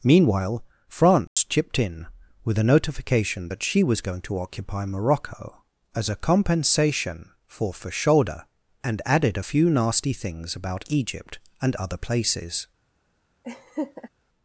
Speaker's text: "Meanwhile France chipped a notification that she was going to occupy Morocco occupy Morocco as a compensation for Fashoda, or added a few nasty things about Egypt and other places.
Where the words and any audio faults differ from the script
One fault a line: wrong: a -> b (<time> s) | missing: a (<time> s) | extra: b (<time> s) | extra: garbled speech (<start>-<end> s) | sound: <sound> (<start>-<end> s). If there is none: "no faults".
sound: dropout (1.3-1.4 s)
extra: in with (1.8 s)
missing: occupy Morocco (5.6 s)
wrong: or -> and (8.8 s)
sound: laugh (13.4-14.1 s)